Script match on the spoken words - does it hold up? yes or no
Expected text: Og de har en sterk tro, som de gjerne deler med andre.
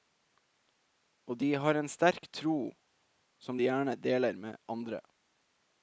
yes